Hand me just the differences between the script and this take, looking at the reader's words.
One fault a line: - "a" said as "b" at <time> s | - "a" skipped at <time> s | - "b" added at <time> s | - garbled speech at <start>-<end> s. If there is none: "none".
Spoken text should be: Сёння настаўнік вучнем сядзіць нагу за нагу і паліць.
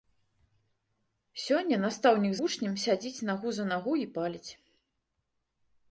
none